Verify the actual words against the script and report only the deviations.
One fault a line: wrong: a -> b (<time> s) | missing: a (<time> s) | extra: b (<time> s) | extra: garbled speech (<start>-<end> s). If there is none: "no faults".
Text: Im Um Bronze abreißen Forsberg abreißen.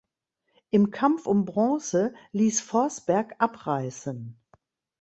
extra: Kampf (0.9 s)
wrong: abreißen -> ließ (2.3 s)